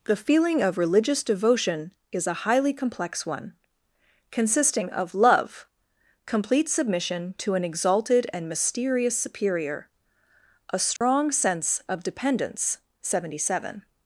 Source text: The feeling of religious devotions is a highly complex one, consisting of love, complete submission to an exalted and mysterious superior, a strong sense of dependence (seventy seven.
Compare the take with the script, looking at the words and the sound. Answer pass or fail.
fail